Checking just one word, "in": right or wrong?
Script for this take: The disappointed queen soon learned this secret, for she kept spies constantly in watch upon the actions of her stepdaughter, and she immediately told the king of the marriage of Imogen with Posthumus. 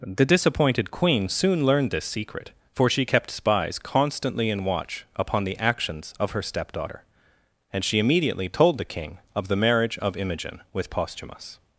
right